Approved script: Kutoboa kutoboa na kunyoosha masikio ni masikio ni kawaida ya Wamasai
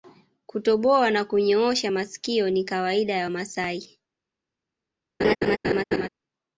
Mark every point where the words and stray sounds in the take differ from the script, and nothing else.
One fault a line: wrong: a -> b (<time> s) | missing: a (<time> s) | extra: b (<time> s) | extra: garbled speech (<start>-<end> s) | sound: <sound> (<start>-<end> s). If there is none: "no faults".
missing: kutoboa (1.1 s)
missing: masikio ni (2.6 s)
sound: laugh (5.2-6.1 s)